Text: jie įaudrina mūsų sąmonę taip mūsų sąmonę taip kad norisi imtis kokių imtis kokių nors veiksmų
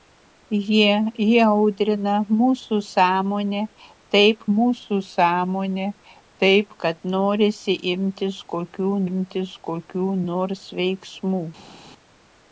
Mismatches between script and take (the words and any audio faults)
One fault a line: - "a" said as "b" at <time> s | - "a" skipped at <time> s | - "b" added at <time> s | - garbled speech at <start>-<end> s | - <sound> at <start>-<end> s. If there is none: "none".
none